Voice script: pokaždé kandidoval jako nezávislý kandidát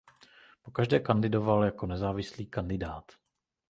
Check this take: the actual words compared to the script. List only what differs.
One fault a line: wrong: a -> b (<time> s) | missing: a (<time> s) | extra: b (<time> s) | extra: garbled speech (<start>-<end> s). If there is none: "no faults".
no faults